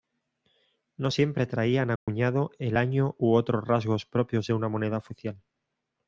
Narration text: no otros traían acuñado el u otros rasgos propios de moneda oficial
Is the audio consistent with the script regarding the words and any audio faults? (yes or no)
no